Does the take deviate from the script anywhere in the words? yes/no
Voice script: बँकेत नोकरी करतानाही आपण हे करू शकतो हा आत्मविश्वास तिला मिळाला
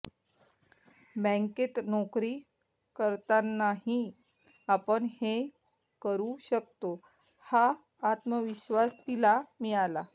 no